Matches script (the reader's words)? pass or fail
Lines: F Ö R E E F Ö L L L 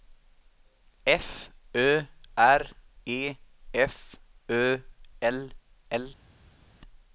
fail